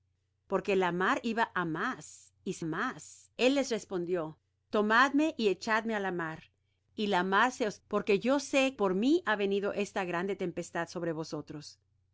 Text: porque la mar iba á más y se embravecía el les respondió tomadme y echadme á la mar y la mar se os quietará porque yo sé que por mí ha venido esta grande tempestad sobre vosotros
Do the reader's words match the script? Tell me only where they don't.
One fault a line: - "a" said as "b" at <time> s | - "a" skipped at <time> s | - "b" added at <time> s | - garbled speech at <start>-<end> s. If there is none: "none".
- "embravecía" said as "más" at 2.6 s
- "quietará" skipped at 7.8 s
- "que" skipped at 8.7 s